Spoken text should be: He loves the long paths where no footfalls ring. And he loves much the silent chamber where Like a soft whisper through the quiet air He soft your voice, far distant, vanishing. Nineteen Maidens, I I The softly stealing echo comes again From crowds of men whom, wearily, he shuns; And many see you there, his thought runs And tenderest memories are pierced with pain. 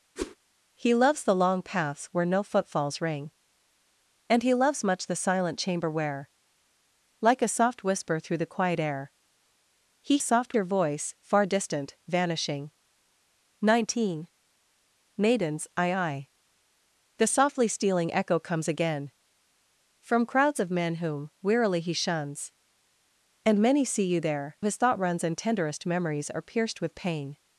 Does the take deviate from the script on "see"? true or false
false